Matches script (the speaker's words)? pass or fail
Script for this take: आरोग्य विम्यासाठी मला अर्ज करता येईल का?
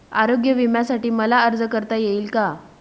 pass